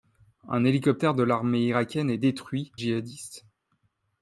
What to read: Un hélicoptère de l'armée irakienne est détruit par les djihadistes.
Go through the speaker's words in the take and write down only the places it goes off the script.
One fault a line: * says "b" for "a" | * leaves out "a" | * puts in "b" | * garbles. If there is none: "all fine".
* leaves out "par les"